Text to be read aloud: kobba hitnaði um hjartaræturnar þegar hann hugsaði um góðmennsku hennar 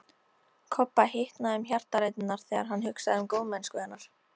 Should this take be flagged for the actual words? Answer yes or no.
no